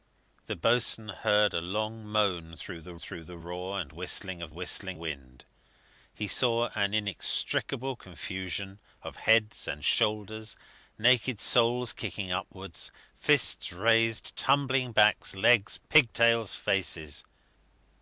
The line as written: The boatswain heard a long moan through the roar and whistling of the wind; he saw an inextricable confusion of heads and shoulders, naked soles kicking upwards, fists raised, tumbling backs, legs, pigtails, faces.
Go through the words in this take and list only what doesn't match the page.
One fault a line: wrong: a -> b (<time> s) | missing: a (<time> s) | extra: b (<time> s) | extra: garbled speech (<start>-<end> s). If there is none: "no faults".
extra: through the (3.0 s)
wrong: the -> whistling (4.5 s)